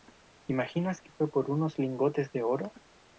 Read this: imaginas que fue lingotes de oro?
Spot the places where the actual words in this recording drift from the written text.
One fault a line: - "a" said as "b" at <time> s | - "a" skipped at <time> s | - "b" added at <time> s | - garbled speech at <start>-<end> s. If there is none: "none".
- "por unos" added at 1.3 s